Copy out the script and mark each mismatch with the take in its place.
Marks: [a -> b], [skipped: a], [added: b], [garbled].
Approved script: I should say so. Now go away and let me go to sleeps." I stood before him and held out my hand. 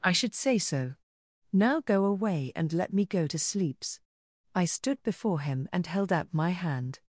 I should say so. Now go away and let me go to sleeps." I stood before him and held out my hand.